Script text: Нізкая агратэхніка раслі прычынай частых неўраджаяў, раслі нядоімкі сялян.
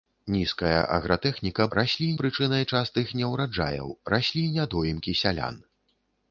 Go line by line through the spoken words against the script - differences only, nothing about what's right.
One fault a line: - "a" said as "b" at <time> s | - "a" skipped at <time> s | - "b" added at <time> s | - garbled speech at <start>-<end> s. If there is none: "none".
none